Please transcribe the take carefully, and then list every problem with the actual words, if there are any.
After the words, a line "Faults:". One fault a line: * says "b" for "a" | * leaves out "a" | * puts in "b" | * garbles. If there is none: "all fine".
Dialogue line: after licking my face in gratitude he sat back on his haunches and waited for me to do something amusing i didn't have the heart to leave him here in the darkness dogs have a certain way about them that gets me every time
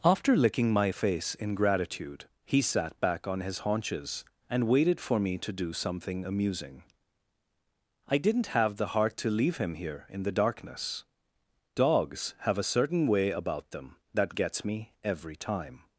after licking my face in gratitude he sat back on his haunches and waited for me to do something amusing i didn't have the heart to leave him here in the darkness dogs have a certain way about them that gets me every time
Faults:
all fine